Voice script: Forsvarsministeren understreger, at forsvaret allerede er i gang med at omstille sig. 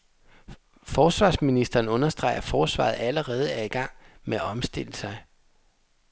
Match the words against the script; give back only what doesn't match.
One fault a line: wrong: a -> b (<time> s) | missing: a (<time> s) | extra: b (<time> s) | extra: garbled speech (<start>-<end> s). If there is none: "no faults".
no faults